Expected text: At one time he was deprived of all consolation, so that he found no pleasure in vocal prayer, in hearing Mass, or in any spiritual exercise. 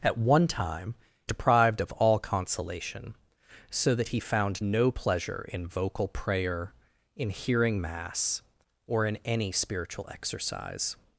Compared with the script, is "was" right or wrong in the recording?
wrong